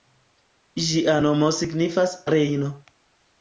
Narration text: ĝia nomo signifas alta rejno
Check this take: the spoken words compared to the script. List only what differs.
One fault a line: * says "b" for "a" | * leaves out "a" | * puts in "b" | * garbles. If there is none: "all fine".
* leaves out "alta"